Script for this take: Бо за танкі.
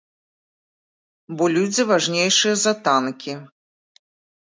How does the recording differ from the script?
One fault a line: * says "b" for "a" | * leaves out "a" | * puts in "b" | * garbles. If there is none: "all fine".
* puts in "людзі важнейшыя"